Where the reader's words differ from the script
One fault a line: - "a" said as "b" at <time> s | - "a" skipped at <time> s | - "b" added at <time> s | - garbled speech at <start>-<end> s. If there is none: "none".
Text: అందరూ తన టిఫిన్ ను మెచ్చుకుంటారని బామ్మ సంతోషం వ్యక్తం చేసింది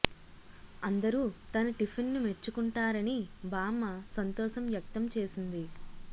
none